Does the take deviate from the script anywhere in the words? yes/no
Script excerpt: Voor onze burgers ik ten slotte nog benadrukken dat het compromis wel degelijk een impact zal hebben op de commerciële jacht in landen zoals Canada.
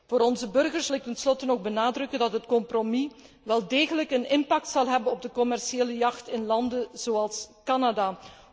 no